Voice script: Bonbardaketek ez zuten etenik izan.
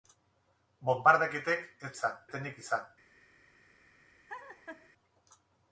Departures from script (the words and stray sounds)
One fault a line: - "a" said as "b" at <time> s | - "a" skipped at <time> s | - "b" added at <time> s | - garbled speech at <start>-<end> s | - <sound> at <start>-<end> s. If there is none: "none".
- "zuten" said as "izan" at 2.0 s
- laugh at 4.3-4.9 s